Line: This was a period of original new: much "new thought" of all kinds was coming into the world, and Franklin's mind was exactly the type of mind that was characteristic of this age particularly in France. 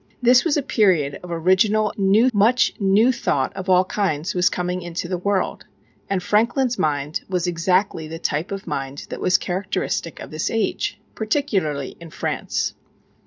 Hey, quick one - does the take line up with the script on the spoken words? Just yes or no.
yes